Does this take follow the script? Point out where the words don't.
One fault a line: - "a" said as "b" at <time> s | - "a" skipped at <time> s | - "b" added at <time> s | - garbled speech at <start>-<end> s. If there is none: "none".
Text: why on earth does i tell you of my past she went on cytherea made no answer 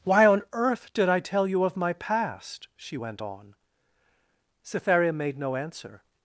- "does" said as "did" at 0.9 s